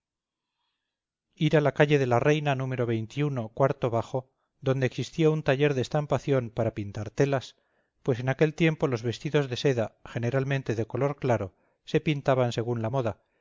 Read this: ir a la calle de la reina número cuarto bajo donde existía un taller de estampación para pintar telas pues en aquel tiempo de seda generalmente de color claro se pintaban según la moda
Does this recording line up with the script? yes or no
no